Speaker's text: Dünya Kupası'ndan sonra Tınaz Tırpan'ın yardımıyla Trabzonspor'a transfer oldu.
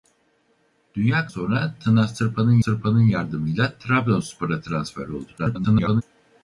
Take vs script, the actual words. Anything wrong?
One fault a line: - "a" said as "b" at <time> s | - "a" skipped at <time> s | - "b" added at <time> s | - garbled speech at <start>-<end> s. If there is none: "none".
- "Kupası'ndan" skipped at 1.3 s
- "Tırpan'ın" added at 2.6 s
- garbled speech at 5.4-6.0 s